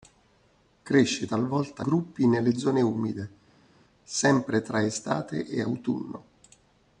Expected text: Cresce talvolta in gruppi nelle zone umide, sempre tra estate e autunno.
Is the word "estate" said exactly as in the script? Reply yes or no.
yes